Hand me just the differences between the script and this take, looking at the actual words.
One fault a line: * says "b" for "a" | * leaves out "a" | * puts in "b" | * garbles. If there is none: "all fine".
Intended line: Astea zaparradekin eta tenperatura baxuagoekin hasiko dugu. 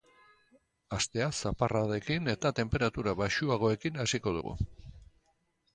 all fine